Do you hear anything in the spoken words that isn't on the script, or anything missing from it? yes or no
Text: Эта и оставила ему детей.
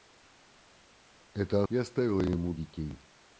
no